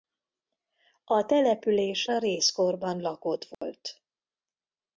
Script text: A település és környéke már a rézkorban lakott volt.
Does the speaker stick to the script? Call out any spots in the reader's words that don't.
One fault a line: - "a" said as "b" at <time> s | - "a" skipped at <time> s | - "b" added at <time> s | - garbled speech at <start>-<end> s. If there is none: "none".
- "és környéke már" skipped at 2.0 s